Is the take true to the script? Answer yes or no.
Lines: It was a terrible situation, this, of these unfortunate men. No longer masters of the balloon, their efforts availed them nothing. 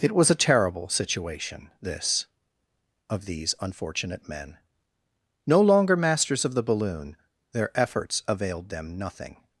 yes